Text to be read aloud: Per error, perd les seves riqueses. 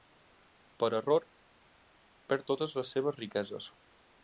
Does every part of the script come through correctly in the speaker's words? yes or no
no